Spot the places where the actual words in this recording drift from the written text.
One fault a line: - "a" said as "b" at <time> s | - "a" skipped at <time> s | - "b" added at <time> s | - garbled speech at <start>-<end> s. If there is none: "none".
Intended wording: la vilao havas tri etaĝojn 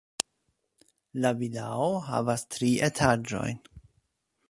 none